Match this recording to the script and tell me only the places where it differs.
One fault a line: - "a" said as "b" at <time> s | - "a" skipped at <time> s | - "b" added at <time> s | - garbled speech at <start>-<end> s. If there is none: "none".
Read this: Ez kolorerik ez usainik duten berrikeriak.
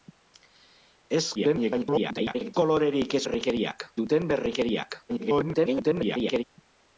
- garbled speech at 1.3-2.5 s
- "usainik" said as "berrikeriak" at 3.2 s
- garbled speech at 5.1-6.4 s